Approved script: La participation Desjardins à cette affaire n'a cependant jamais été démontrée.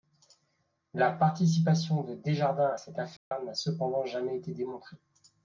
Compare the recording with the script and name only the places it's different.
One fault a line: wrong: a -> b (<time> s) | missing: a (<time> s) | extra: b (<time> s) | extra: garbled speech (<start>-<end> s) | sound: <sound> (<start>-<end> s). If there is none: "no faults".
extra: de (2.0 s)
sound: dropout (3.2-3.3 s)